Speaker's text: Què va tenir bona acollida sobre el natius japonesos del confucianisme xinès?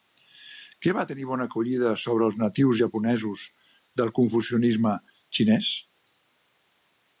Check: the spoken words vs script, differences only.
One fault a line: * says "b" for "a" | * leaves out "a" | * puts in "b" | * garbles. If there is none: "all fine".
* says "els" for "el"